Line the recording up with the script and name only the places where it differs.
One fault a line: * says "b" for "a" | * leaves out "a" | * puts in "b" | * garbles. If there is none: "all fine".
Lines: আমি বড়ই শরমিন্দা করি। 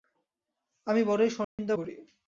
all fine